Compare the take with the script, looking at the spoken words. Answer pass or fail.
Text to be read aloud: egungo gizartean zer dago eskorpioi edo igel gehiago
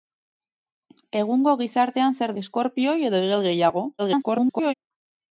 fail